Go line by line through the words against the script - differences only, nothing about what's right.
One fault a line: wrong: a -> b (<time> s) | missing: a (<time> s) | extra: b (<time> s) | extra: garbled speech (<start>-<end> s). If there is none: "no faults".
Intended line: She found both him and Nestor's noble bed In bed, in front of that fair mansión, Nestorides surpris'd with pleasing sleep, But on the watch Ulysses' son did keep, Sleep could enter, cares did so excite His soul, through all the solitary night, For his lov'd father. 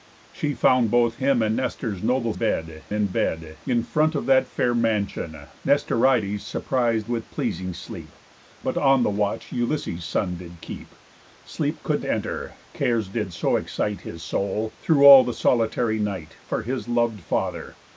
no faults